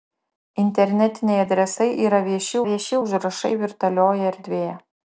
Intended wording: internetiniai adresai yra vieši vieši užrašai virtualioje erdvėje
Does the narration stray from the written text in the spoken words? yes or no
no